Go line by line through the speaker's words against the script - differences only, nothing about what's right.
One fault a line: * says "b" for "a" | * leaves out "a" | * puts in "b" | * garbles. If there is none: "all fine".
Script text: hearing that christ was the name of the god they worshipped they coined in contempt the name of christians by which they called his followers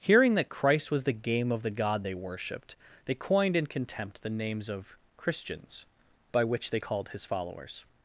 * says "game" for "name"
* says "names" for "name"